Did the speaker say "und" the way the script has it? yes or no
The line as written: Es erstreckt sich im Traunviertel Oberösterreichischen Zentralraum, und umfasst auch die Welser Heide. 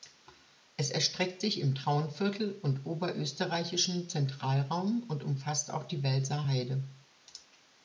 yes